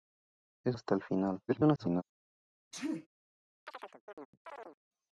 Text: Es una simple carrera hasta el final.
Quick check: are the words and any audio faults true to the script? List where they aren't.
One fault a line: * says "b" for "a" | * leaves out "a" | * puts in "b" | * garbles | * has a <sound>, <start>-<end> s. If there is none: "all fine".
* leaves out "una simple carrera"
* garbles
* has a sneeze, 2.7-3.1 s
* has a chirp, 3.7-4.8 s